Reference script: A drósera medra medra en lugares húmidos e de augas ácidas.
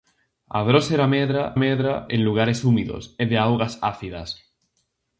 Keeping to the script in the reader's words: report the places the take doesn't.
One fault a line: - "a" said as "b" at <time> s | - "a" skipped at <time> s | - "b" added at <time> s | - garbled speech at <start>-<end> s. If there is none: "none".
none